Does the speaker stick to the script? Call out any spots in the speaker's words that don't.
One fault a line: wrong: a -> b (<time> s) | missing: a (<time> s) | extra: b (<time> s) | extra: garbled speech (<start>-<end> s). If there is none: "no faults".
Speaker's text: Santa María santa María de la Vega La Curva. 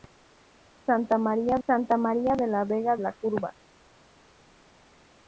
no faults